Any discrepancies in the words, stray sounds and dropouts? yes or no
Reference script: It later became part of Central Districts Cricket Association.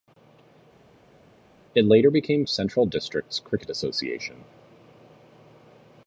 yes